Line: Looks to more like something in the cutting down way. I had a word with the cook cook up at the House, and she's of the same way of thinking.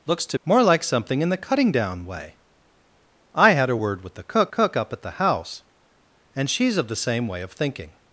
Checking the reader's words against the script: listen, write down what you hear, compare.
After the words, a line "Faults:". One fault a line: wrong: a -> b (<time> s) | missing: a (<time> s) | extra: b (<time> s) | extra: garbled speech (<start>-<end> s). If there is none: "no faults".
Looks to more like something in the cutting down way. I had a word with the cook cook up at the House, and she's of the same way of thinking.
Faults:
no faults